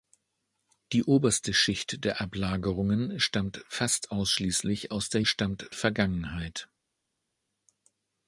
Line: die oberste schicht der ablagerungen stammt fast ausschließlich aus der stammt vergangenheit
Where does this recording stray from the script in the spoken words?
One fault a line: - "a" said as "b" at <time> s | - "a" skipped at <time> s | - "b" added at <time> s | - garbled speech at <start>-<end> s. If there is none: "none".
none